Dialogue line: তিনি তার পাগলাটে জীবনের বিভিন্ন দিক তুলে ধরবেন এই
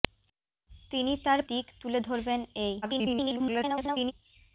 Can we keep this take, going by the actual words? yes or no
no